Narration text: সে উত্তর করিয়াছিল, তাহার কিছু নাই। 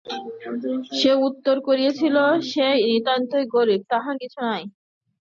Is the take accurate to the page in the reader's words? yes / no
no